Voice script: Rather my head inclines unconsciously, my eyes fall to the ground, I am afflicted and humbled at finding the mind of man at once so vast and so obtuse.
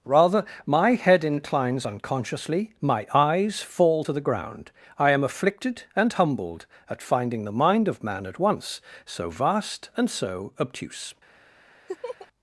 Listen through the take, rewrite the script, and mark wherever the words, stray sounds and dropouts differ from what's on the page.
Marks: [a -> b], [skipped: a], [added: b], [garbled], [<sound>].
Rather my head inclines unconsciously, my eyes fall to the ground, I am afflicted and humbled at finding the mind of man at once so vast and so obtuse. [laugh]